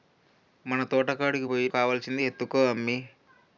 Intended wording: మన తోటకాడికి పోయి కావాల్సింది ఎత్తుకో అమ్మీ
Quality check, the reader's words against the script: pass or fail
pass